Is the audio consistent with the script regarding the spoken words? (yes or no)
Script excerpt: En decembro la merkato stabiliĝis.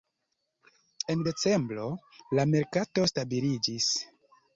yes